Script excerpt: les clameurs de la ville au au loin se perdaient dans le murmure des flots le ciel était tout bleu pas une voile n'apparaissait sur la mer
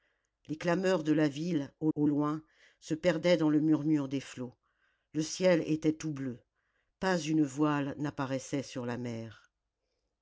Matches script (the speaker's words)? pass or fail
pass